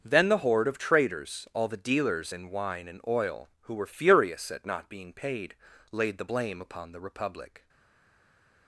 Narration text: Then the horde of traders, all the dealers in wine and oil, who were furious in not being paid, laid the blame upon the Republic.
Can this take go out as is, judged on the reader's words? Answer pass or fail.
fail